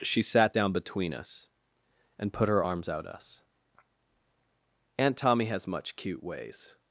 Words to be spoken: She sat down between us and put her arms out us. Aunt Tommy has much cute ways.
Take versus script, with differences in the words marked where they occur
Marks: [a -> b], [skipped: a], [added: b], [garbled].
She sat down between us and put her arms out us. Aunt Tommy has much cute ways.